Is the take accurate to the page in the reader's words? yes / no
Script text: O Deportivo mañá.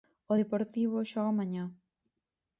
no